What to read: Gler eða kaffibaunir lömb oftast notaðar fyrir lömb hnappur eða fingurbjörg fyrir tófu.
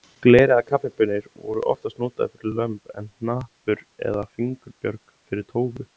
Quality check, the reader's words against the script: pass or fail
fail